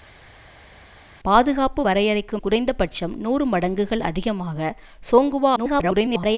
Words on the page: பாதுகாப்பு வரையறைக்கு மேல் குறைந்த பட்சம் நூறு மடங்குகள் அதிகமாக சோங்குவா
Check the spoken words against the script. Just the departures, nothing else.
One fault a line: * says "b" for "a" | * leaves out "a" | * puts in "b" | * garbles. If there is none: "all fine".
* leaves out "மேல்"
* garbles